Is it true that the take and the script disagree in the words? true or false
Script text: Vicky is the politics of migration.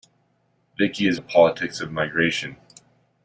false